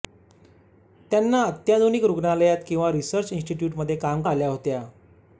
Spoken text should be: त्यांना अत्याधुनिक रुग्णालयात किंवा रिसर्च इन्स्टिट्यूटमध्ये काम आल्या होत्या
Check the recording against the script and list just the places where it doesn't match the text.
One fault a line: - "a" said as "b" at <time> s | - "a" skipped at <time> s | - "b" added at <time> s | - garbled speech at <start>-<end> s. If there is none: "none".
none